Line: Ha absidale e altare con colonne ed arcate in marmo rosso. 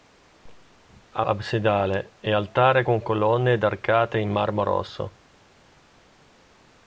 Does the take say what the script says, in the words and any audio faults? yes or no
yes